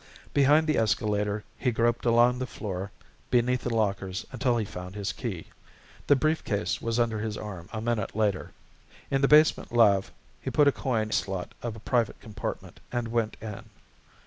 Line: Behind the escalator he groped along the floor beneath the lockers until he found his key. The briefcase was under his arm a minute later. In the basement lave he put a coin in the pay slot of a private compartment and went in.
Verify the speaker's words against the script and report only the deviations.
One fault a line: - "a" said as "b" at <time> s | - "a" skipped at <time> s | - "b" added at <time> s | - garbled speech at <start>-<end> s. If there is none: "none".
- "in the pay" skipped at 11.1 s